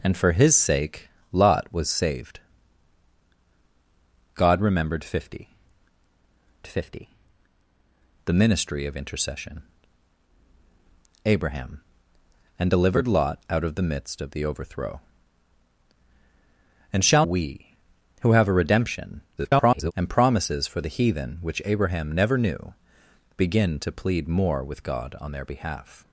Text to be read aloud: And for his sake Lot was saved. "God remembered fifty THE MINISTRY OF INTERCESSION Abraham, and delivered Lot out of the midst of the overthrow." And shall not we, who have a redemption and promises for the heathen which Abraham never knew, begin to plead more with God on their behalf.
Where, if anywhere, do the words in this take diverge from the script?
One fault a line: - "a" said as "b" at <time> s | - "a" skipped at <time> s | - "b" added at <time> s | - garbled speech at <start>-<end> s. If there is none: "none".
- "fifty" added at 6.7 s
- "not" skipped at 17.3 s
- garbled speech at 19.4-19.9 s